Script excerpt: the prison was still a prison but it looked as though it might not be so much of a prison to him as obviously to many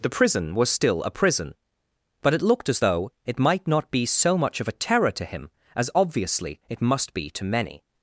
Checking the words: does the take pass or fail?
fail